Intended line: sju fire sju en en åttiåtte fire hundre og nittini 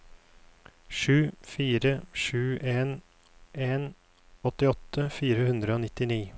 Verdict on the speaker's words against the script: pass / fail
pass